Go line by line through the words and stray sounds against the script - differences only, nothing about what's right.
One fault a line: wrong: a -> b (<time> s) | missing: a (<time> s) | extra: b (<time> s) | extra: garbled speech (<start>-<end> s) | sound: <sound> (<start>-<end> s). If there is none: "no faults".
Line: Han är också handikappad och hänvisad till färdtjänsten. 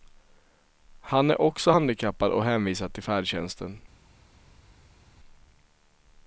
no faults